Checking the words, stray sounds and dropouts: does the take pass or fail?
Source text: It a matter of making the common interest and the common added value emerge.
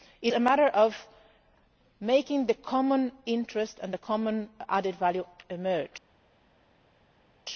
pass